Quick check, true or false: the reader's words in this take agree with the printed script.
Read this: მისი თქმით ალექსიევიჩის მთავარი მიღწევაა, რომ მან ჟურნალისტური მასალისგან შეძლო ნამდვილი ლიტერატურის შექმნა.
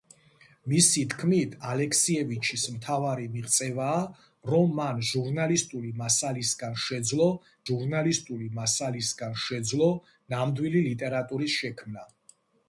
false